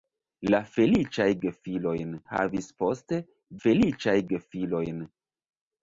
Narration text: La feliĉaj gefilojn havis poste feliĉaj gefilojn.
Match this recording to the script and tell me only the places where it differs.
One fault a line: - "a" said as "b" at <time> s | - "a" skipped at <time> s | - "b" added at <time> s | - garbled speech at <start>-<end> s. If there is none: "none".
none